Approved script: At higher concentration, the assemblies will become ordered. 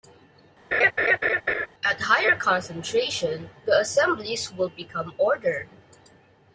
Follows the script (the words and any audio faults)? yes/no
no